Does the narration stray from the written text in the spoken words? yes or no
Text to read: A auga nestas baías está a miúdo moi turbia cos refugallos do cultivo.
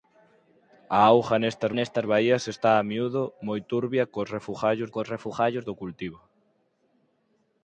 yes